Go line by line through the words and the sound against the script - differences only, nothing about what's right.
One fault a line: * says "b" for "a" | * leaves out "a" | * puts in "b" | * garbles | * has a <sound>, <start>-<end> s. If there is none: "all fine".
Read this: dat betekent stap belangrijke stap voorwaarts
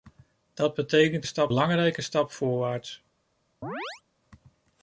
* has a chirp, 3.6-4.0 s